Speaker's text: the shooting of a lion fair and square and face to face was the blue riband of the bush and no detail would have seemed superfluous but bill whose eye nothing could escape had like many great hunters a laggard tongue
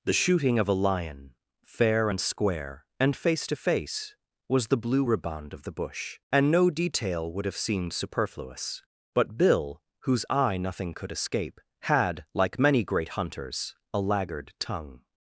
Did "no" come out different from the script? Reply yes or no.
no